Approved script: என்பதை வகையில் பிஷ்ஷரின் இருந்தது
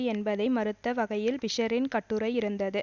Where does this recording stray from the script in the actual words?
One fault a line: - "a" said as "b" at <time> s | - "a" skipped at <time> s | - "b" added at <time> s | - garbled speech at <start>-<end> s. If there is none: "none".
- "மறுத்த" added at 0.5 s
- "கட்டுரை" added at 1.9 s